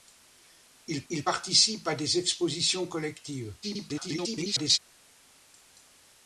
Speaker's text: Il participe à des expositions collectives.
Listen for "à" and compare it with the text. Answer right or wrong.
right